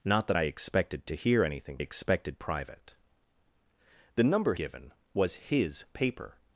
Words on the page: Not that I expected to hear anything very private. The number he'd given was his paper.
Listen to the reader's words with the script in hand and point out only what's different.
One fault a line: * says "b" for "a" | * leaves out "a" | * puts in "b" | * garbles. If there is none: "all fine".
* says "expected" for "very"
* leaves out "he'd"